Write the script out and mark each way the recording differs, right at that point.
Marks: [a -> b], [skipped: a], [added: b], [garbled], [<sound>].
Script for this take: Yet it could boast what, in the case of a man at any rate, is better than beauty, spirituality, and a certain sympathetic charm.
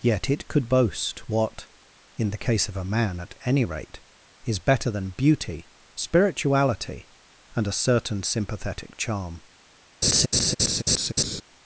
Yet it could boast what, in the case of a man at any rate, is better than beauty, spirituality, and a certain sympathetic charm. [laugh]